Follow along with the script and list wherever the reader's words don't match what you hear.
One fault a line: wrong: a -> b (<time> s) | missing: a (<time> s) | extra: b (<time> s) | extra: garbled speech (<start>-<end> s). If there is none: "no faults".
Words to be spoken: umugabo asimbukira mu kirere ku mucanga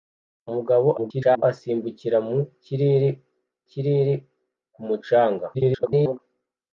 extra: garbled speech (1.0-1.4 s)
extra: kirere (3.7 s)
extra: garbled speech (5.5-6.2 s)